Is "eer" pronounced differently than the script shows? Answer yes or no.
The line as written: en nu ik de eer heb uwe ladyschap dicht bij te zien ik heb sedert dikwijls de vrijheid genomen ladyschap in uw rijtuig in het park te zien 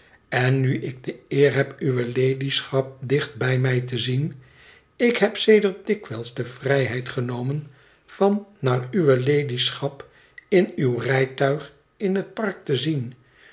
no